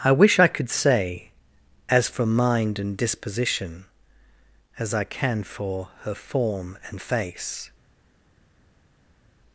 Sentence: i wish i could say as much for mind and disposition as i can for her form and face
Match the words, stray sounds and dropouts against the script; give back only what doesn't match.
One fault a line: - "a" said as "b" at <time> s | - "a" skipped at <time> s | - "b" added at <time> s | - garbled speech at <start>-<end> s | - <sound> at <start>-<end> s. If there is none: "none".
- "much" skipped at 2.1 s